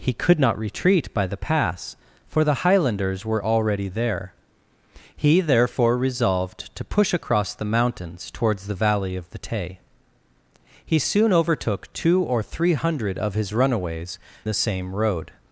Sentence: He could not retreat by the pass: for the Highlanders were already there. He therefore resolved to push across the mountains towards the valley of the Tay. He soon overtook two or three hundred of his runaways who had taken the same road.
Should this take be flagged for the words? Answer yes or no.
yes